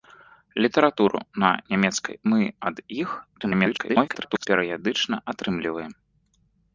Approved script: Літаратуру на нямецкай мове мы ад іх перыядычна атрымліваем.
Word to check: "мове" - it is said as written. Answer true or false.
false